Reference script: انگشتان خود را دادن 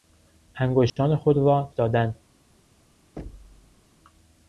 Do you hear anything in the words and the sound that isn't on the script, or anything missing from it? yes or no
yes